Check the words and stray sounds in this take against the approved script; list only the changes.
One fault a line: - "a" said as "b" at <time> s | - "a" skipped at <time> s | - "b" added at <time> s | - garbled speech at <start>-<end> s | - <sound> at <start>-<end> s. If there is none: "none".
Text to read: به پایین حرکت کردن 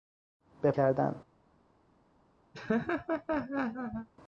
- "پایین حرکت" skipped at 0.7 s
- laugh at 2.5-4.1 s